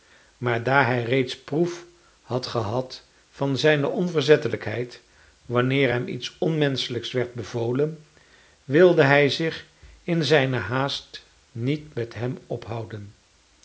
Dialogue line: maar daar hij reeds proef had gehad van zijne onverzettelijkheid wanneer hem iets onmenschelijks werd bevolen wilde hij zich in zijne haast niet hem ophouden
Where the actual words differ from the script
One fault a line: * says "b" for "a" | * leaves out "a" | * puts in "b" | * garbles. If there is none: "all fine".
* puts in "met"